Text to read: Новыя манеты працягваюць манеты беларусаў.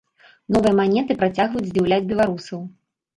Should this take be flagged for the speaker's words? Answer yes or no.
yes